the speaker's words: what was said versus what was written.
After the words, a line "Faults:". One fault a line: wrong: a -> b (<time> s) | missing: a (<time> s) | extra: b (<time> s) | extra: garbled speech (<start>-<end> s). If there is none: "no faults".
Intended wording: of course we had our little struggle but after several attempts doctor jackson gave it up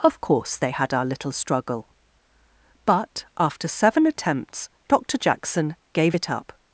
of course they had our little struggle but after seven attempts doctor jackson gave it up
Faults:
wrong: we -> they (0.6 s)
wrong: several -> seven (3.7 s)